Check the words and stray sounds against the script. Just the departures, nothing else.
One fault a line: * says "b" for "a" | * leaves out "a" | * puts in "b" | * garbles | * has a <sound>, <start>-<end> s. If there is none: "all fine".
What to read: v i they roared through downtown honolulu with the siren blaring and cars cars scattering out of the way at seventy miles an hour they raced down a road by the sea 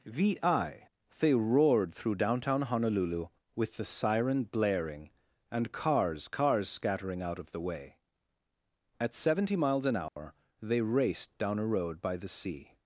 * has a dropout, 10.1-10.2 s